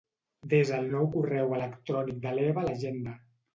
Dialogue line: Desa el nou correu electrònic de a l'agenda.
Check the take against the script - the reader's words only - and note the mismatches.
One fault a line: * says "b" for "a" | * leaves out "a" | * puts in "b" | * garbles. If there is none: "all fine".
* puts in "l'Eva"